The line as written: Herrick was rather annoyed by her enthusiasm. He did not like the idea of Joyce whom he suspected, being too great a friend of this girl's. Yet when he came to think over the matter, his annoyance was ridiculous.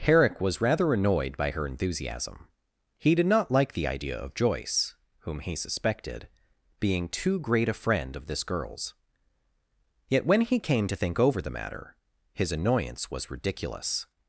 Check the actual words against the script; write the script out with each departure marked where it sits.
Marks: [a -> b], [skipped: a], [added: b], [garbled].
Herrick was rather annoyed by her enthusiasm. He did not like the idea of Joyce whom he suspected, being too great a friend of this girl's. Yet when he came to think over the matter, his annoyance was ridiculous.